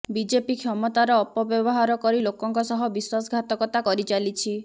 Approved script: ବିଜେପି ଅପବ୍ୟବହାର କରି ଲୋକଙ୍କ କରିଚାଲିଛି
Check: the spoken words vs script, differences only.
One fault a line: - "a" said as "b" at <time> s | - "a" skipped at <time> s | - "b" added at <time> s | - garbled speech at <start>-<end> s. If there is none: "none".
- "କ୍ଷମତାର" added at 0.6 s
- "ସହ ବିଶ୍ୱାସଘାତକତା" added at 2.7 s